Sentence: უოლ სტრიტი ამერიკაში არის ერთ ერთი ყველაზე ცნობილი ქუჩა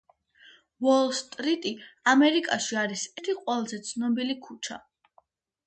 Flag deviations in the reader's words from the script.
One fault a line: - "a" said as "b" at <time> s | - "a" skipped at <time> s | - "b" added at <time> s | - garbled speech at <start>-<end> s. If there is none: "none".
- "ერთ" skipped at 3.0 s